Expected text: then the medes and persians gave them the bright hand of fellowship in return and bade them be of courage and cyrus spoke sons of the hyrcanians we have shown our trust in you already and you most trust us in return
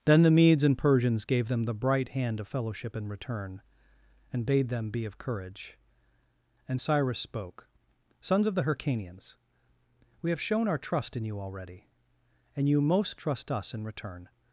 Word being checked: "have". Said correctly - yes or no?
yes